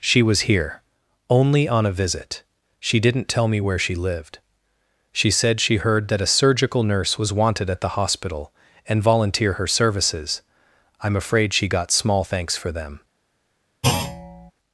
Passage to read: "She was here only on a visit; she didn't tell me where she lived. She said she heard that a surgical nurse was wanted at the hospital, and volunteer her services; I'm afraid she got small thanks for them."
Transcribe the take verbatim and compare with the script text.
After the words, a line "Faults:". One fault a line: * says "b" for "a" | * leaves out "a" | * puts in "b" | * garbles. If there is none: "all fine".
"She was here only on a visit; she didn't tell me where she lived. She said she heard that a surgical nurse was wanted at the hospital, and volunteer her services; I'm afraid she got small thanks for them."
Faults:
all fine